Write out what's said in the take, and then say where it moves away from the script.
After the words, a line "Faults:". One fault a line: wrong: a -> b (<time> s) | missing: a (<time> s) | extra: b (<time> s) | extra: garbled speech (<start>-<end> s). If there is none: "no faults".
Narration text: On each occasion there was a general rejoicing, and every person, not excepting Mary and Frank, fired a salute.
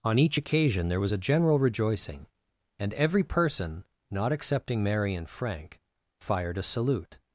On each occasion there was a general rejoicing, and every person, not excepting Mary and Frank, fired a salute.
Faults:
no faults